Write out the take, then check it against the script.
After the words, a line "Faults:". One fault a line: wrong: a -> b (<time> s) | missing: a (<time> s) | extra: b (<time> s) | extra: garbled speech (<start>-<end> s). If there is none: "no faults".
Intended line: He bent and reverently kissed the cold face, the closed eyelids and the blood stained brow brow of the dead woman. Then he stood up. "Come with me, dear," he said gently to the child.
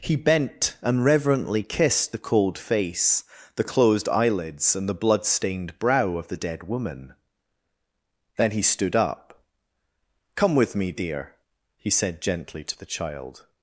He bent and reverently kissed the cold face, the closed eyelids and the blood stained brow of the dead woman. Then he stood up. "Come with me, dear," he said gently to the child.
Faults:
missing: brow (6.2 s)